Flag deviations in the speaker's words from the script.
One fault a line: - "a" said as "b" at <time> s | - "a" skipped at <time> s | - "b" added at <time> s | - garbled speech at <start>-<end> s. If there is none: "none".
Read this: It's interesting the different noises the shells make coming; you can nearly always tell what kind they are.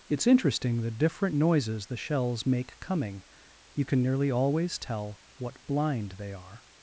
- "kind" said as "blind" at 5.7 s